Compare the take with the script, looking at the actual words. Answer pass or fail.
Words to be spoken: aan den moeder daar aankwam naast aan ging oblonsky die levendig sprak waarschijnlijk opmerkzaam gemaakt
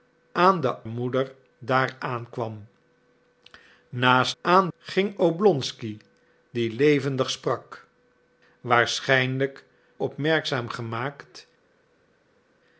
pass